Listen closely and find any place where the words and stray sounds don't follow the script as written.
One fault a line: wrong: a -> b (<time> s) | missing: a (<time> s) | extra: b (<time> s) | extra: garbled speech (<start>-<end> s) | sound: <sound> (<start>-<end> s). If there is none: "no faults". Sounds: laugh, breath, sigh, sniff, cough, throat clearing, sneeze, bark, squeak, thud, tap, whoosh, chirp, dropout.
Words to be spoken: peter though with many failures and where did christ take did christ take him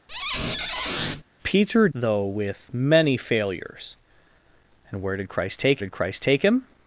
sound: squeak (0.1-1.2 s)